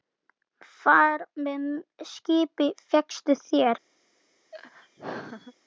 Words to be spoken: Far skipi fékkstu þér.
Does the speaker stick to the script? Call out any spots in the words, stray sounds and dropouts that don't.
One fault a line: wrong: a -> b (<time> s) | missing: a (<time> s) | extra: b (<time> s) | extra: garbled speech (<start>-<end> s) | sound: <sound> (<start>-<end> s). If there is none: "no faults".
extra: með (1.5 s)
sound: laugh (4.5-5.5 s)